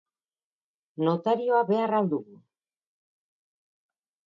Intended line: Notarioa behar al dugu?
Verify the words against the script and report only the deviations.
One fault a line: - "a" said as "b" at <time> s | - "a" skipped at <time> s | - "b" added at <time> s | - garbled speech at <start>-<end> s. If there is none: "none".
none